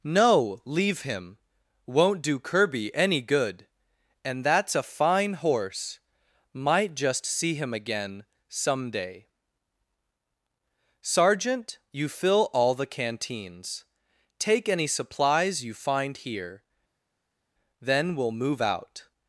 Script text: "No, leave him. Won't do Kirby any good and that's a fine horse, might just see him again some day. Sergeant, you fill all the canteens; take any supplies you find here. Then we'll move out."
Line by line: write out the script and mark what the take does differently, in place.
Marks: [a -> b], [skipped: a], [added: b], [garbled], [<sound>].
"No, leave him. Won't do Kirby any good and that's a fine horse, might just see him again some day. Sergeant, you fill all the canteens; take any supplies you find here. Then we'll move out."